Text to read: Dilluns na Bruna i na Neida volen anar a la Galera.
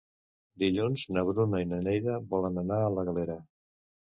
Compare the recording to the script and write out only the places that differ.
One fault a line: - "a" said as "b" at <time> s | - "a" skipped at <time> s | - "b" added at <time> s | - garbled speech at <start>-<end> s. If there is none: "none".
none